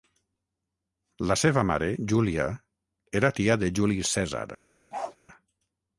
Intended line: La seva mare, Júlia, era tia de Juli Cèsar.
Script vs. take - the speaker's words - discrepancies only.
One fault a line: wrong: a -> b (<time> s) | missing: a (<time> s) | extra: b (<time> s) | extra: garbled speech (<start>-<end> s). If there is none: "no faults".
no faults